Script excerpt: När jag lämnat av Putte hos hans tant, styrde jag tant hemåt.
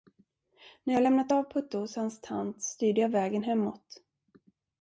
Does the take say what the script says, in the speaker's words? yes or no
no